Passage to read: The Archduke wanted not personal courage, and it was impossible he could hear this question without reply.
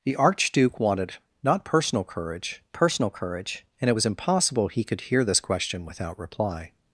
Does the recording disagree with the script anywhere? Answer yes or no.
yes